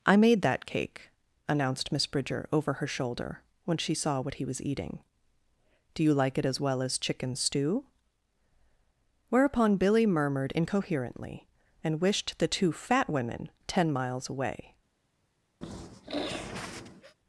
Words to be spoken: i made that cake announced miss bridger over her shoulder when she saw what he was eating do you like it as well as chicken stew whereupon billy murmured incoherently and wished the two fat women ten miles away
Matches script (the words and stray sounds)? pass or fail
fail